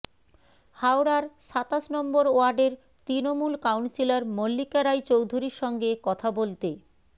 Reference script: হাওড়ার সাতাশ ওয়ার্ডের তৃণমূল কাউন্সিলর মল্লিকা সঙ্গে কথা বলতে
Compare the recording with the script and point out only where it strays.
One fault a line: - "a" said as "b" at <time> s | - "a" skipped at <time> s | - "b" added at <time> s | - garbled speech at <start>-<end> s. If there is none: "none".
- "নম্বর" added at 1.9 s
- "রায় চৌধুরীর" added at 4.8 s